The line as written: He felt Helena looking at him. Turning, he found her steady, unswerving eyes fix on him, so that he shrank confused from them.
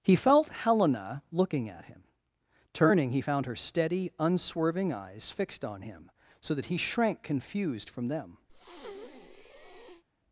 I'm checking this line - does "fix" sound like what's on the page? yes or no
no